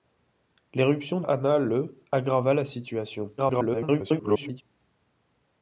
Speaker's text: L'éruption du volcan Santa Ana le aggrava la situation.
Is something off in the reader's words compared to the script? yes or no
yes